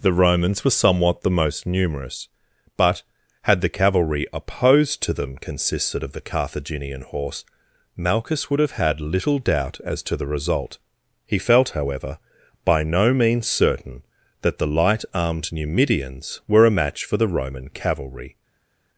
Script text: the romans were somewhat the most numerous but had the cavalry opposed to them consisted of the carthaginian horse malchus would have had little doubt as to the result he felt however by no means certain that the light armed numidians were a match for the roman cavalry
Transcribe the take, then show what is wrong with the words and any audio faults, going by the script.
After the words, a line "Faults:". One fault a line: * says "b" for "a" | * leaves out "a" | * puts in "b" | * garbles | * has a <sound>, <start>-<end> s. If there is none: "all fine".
the romans were somewhat the most numerous but had the cavalry opposed to them consisted of the carthaginian horse malchus would have had little doubt as to the result he felt however by no means certain that the light armed numidians were a match for the roman cavalry
Faults:
all fine